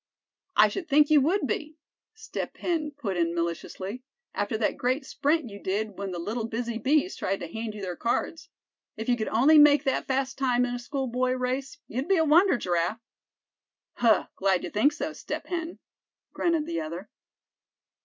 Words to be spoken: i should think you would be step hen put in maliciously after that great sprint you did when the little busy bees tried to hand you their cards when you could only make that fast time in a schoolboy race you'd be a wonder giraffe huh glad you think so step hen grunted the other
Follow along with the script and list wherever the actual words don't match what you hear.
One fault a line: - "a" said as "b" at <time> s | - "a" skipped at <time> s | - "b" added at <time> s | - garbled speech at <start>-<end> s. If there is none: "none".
- "when" said as "if" at 8.9 s